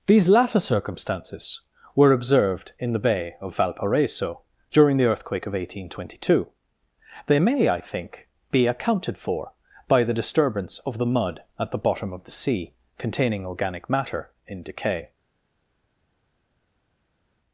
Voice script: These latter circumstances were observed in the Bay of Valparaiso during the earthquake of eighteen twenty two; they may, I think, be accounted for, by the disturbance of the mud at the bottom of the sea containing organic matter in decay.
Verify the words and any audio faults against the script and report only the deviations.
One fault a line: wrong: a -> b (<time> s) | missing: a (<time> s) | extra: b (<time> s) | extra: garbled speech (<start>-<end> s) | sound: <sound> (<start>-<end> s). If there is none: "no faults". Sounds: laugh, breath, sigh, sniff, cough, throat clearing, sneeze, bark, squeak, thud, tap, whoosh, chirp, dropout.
no faults